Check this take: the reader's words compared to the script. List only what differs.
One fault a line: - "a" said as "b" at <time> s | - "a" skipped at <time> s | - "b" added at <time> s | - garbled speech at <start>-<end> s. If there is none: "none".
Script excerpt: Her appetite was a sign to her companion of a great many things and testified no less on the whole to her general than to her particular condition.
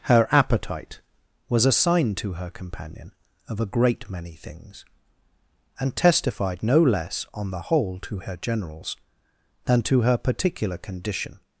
- "general" said as "generals" at 8.4 s